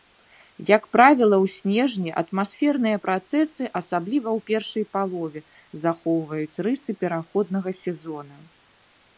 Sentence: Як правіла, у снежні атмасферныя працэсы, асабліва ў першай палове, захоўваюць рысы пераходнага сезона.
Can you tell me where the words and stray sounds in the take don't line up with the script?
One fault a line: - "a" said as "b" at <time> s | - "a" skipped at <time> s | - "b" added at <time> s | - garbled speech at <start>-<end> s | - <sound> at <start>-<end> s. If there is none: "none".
none